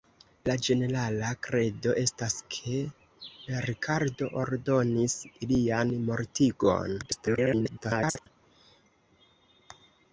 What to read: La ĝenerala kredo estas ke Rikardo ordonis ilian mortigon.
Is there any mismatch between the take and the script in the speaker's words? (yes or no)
yes